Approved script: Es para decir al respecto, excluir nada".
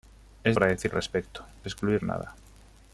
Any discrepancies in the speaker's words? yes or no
no